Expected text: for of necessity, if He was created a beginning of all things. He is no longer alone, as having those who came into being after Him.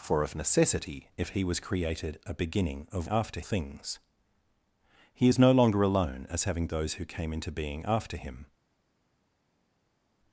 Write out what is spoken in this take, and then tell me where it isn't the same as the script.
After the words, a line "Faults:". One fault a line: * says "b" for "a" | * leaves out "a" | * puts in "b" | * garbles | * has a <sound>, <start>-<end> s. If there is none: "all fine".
for of necessity, if He was created a beginning of after things. He is no longer alone, as having those who came into being after Him.
Faults:
* says "after" for "all"